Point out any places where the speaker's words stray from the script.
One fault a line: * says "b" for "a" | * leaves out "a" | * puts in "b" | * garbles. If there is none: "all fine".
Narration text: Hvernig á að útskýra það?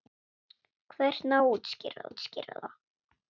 * puts in "útskýra"